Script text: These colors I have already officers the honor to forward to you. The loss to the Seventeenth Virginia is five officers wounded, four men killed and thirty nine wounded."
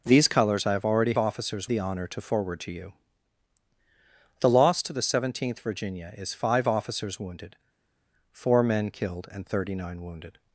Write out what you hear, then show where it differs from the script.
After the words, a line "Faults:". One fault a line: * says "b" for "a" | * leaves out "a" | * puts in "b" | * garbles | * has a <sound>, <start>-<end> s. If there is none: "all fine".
These colors I have already officers the honor to forward to you. The loss to the Seventeenth Virginia is five officers wounded, four men killed and thirty nine wounded."
Faults:
all fine